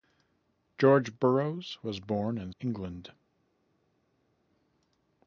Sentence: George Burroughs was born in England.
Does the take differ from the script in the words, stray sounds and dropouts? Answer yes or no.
no